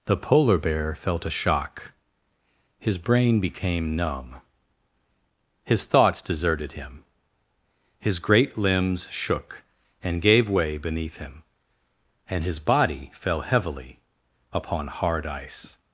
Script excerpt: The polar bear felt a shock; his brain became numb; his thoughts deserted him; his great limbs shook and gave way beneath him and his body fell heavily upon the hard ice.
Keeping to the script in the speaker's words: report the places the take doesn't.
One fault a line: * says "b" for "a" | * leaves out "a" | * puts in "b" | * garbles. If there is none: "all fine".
* leaves out "the"